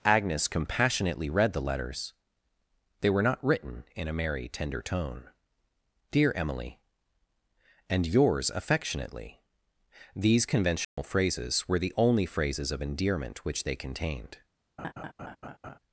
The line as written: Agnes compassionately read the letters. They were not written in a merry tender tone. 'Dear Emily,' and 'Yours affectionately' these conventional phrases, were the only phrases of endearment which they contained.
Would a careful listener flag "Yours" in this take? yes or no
no